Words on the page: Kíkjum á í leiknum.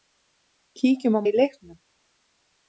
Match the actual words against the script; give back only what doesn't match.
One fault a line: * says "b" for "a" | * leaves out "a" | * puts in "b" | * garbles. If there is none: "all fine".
all fine